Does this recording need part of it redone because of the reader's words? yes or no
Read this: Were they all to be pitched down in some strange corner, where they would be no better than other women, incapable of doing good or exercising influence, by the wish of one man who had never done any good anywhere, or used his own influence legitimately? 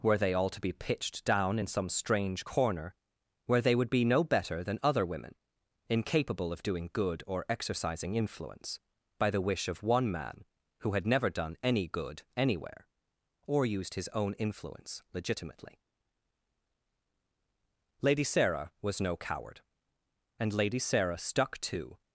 yes